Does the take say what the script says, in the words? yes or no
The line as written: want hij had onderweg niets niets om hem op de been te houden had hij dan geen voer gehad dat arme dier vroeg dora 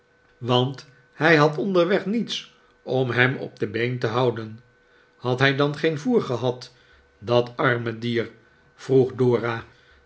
no